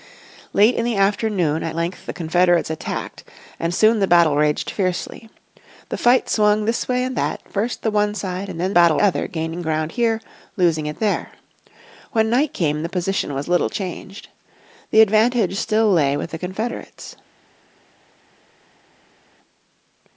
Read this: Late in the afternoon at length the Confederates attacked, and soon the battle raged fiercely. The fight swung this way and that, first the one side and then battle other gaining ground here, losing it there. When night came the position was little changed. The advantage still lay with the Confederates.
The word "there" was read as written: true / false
true